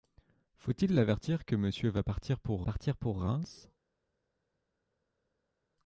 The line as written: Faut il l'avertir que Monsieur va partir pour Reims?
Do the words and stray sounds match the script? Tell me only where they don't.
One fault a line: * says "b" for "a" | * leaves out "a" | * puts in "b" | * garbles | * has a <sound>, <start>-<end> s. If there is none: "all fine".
* puts in "partir pour"